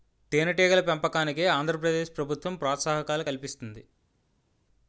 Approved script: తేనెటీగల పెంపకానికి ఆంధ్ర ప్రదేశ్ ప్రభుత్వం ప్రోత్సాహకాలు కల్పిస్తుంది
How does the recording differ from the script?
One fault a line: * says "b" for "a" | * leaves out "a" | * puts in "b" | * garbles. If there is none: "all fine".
all fine